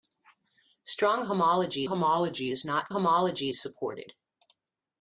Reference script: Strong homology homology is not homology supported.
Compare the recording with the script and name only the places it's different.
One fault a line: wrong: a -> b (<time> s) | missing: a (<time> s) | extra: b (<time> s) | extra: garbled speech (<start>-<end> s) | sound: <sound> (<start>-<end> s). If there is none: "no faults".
no faults